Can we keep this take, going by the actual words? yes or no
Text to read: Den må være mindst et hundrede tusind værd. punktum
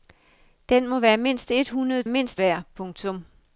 no